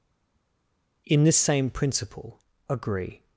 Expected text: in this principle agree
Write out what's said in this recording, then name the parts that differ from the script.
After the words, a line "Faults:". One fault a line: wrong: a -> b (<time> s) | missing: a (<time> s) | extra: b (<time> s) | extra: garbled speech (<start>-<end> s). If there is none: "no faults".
in this same principle agree
Faults:
extra: same (1.4 s)